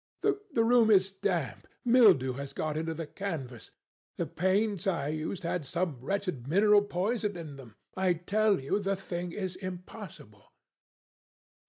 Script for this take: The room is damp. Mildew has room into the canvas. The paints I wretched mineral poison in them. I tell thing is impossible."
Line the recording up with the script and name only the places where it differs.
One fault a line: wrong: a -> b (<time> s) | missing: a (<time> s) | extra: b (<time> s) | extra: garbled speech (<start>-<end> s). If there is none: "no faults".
wrong: room -> got (2.5 s)
extra: used had some (5.1 s)
extra: you the (8.6 s)